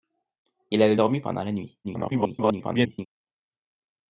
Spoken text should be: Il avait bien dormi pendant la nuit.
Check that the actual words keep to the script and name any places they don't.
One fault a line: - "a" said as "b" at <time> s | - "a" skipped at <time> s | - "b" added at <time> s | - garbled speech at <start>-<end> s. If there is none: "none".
- "bien" skipped at 0.9 s
- garbled speech at 1.8-3.1 s